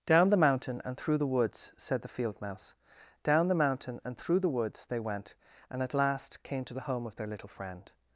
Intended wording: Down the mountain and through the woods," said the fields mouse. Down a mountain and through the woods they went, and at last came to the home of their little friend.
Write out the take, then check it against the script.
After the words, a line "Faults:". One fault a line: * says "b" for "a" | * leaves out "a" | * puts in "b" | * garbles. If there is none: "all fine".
Down the mountain and through the woods," said the field mouse. Down the mountain and through the woods they went, and at last came to the home of their little friend.
Faults:
* says "field" for "fields"
* says "the" for "a"